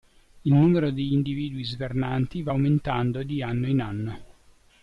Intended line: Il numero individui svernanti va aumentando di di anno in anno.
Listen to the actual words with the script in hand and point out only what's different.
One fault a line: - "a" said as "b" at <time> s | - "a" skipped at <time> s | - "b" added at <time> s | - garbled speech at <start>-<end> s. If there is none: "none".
- "di" added at 0.9 s
- "di" skipped at 3.4 s